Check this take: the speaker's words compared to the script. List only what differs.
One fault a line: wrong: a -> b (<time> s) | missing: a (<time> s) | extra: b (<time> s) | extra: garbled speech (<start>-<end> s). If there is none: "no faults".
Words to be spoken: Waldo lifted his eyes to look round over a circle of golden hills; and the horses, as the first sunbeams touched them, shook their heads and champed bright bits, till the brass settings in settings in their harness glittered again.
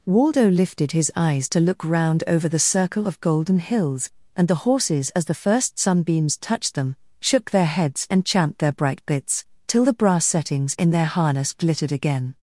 wrong: a -> the (2.5 s)
extra: their (8.6 s)
missing: settings in (10.9 s)